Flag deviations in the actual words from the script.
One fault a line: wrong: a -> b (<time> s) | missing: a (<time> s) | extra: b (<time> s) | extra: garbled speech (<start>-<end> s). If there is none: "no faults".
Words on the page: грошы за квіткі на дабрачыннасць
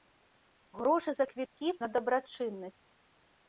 no faults